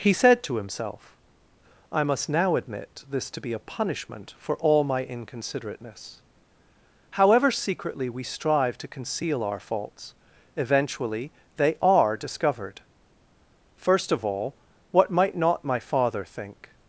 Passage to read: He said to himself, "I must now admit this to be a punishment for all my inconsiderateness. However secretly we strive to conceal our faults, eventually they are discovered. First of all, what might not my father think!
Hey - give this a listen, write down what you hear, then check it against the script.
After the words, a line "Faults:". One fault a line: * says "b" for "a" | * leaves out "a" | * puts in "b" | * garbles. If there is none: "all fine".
He said to himself, "I must now admit this to be a punishment for all my inconsiderateness. However secretly we strive to conceal our faults, eventually they are discovered. First of all, what might not my father think!
Faults:
all fine